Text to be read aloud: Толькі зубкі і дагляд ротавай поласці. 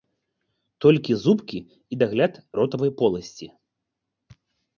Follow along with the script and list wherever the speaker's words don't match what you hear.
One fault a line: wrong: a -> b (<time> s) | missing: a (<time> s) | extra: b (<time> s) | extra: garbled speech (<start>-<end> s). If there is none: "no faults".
no faults